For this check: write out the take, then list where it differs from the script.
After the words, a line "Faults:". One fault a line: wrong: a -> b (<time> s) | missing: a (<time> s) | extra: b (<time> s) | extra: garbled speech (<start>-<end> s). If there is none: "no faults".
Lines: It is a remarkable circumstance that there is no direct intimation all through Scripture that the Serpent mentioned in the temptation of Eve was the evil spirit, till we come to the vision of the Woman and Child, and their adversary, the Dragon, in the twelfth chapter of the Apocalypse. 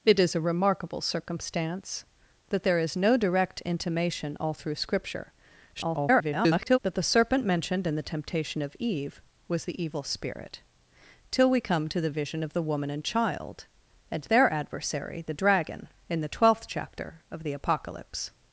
It is a remarkable circumstance that there is no direct intimation all through Scripture [garbled] that the Serpent mentioned in the temptation of Eve was the evil spirit, till we come to the vision of the Woman and Child, and their adversary, the Dragon, in the twelfth chapter of the Apocalypse.
Faults:
extra: garbled speech (5.7-6.8 s)